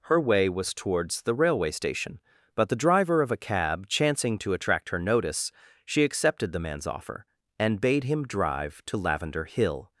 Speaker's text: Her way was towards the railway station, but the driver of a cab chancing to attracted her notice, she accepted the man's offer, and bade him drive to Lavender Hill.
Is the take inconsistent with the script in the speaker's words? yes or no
yes